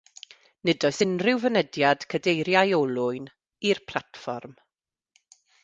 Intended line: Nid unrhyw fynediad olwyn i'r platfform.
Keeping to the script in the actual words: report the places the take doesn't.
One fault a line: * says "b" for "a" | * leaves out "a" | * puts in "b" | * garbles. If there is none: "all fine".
* puts in "oes"
* puts in "cadeiriau"